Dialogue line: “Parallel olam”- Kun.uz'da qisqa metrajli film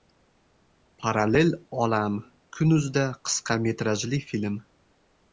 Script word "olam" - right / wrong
right